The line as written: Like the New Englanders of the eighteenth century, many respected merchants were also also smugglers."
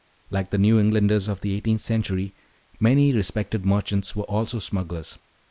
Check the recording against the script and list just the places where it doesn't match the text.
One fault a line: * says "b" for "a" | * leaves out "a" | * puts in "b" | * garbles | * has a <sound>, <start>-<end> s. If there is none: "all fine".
* leaves out "also"